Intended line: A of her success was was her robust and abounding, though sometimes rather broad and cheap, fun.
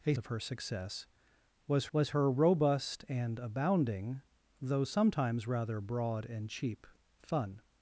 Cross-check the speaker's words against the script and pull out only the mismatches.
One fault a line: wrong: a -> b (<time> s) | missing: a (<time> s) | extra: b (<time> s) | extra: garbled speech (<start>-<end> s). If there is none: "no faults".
no faults